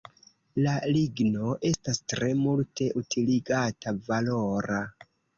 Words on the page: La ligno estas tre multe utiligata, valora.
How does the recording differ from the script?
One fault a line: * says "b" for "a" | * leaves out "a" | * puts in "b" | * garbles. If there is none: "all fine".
all fine